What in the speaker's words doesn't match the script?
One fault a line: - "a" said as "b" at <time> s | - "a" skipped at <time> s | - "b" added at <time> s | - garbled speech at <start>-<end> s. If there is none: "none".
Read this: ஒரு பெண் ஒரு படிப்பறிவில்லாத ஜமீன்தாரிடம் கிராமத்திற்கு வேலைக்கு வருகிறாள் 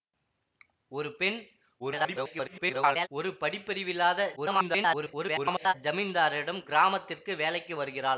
- garbled speech at 1.8-3.1 s
- garbled speech at 4.4-5.7 s